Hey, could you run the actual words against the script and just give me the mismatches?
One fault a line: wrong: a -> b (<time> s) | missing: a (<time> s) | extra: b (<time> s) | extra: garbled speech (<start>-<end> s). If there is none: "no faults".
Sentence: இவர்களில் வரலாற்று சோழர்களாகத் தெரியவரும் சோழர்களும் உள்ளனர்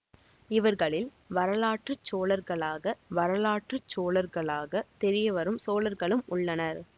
extra: வரலாற்று சோழர்களாகத் (3.1 s)